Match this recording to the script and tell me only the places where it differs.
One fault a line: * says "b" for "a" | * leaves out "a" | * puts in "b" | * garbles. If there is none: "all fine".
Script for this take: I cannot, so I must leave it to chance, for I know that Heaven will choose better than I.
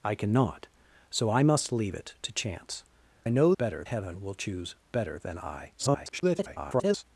* leaves out "for"
* says "better" for "that"
* garbles